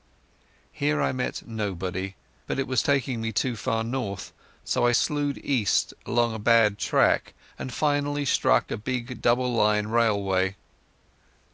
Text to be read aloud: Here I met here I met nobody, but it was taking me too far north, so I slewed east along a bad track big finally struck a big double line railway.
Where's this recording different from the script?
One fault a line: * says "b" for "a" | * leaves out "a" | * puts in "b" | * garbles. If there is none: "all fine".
* leaves out "here I met"
* says "and" for "big"